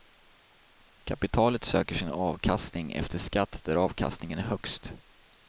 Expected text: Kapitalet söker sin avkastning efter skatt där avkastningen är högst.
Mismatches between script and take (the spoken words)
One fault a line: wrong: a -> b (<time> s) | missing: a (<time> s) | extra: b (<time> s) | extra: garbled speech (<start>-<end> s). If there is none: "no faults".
no faults